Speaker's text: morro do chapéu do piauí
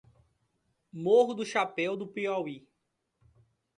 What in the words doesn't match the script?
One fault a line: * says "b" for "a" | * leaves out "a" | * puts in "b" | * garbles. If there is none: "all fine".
all fine